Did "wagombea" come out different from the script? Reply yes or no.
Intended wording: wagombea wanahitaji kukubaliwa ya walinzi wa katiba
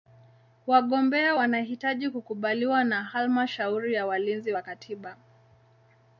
no